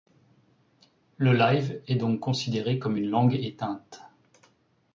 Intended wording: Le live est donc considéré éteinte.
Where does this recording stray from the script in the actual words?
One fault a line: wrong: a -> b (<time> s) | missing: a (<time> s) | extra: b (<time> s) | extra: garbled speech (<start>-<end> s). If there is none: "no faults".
extra: comme une langue (2.8 s)